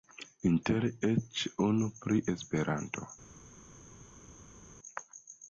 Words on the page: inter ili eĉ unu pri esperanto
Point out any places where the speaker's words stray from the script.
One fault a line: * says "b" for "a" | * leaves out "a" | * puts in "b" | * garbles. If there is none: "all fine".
* leaves out "ili"